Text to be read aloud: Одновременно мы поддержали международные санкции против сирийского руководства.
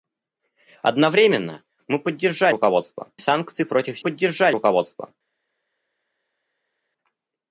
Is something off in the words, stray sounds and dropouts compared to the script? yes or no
yes